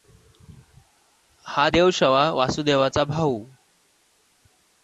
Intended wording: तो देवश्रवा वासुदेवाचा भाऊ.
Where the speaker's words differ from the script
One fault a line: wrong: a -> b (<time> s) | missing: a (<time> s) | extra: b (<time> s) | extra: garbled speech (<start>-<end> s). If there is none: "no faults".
wrong: तो -> हा (1.4 s)